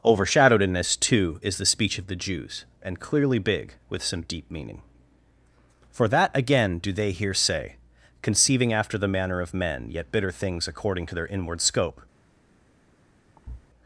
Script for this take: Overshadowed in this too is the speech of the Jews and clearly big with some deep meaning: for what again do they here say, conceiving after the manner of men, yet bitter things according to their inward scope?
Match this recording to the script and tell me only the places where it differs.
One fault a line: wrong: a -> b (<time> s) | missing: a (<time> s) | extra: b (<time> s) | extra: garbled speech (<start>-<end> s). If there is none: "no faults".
wrong: what -> that (6.1 s)